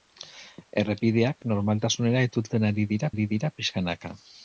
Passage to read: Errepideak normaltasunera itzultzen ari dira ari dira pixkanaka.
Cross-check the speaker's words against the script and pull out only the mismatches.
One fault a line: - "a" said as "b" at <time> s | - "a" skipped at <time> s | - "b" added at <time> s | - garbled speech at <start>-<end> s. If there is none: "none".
none